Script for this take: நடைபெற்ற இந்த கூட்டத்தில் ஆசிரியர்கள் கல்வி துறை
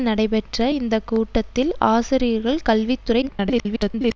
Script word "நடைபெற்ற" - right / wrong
right